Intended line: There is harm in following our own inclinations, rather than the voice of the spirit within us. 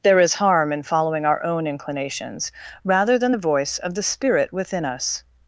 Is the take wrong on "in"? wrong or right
right